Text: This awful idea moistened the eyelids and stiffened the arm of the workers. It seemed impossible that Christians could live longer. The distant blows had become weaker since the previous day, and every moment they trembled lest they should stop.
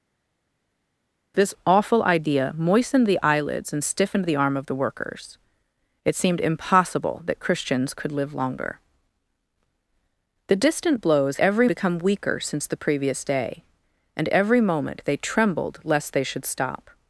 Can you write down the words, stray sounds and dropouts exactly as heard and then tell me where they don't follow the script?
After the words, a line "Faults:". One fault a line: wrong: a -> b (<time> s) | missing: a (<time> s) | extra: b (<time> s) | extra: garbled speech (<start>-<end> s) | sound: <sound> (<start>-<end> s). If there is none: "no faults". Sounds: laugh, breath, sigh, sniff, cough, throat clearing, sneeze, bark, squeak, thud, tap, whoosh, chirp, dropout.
This awful idea moistened the eyelids and stiffened the arm of the workers. It seemed impossible that Christians could live longer. The distant blows every become weaker since the previous day, and every moment they trembled lest they should stop.
Faults:
wrong: had -> every (11.4 s)